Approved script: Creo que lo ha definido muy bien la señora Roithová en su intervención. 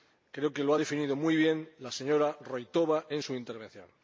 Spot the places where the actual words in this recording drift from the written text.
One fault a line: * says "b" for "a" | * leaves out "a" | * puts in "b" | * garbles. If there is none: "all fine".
all fine